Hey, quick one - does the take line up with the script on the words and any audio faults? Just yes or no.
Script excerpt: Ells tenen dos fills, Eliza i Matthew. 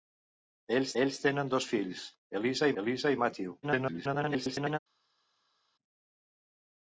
no